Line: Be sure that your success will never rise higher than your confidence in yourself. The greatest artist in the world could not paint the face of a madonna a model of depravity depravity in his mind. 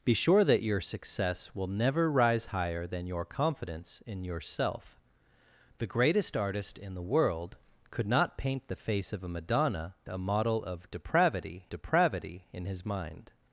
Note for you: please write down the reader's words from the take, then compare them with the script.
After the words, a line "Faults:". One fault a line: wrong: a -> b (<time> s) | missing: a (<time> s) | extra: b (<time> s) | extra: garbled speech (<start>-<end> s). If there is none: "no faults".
Be sure that your success will never rise higher than your confidence in yourself. The greatest artist in the world could not paint the face of a madonna a model of depravity depravity in his mind.
Faults:
no faults